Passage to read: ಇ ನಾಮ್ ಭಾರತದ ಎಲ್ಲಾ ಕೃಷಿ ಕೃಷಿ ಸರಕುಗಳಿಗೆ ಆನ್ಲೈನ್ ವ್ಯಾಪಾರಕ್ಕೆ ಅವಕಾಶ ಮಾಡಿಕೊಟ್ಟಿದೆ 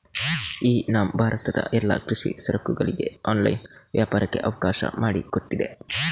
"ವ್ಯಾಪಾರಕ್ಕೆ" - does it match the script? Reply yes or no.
yes